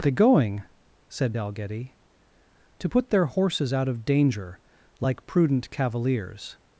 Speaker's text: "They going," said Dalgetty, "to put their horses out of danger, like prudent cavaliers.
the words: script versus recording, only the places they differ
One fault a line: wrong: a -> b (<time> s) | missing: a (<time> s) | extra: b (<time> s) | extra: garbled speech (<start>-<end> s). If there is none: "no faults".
no faults